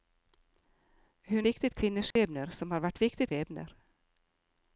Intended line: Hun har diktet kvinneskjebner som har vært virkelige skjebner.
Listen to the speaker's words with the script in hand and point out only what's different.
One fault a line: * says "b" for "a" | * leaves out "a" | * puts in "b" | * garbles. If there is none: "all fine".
* leaves out "har"
* says "diktet" for "virkelige"